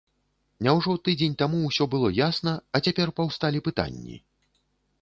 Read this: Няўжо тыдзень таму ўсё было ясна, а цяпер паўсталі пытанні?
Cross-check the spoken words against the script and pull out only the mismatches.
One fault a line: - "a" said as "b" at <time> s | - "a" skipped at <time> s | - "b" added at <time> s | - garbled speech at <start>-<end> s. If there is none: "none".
none